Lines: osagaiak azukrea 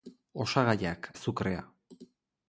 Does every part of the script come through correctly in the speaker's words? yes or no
yes